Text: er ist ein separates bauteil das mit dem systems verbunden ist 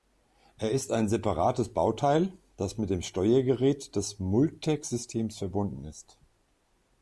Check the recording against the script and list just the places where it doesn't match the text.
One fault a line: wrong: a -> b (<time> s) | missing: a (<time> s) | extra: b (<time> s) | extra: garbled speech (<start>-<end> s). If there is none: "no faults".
extra: steuergerät des multec (3.0 s)